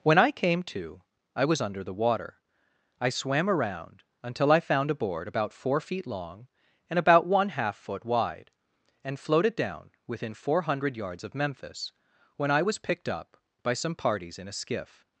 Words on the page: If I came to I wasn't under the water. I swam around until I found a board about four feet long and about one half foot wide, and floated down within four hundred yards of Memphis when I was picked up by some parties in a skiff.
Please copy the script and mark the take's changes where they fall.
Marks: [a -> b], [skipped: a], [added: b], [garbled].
[If -> When] I came to I [wasn't -> was] under the water. I swam around until I found a board about four feet long and about one half foot wide, and floated down within four hundred yards of Memphis when I was picked up by some parties in a skiff.